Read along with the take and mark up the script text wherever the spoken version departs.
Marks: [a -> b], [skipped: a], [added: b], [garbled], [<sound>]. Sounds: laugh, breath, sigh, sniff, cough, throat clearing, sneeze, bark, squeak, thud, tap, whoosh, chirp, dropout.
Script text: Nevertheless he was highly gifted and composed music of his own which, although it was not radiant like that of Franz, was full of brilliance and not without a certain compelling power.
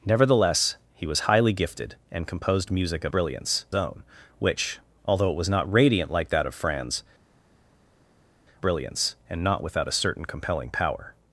Nevertheless he was highly gifted and composed music of [his -> brilliance] own which, although it was not radiant like that of Franz, [skipped: was full of] brilliance and not without a certain compelling power.